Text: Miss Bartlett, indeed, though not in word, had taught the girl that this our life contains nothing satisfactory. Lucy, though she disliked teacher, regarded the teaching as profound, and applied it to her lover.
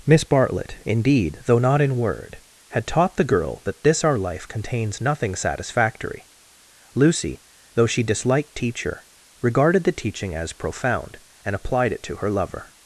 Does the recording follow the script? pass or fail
pass